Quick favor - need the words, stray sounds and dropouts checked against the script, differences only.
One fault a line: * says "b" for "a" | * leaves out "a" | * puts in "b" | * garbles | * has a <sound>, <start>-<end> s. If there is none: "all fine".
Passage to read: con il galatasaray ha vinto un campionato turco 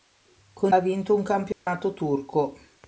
* leaves out "il galatasaray"
* has a dropout, 1.5-1.7 s